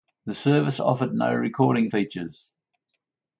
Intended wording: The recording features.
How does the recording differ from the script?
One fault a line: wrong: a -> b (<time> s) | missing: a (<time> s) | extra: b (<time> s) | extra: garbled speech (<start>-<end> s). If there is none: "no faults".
extra: service offered no (0.3 s)